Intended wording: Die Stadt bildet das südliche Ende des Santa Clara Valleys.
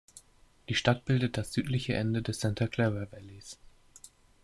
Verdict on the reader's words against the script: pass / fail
pass